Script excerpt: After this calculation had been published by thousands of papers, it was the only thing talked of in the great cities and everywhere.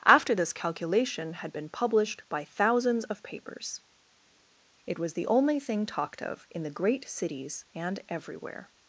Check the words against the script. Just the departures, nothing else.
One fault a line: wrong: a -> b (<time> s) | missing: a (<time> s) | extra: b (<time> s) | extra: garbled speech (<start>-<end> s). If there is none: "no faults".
no faults